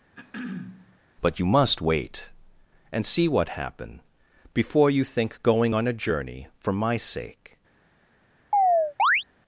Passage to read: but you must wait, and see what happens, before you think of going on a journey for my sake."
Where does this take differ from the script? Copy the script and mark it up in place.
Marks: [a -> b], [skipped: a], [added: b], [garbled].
but you must wait, and see what [happens, -> happen] before you think [skipped: of] going on a journey for my sake."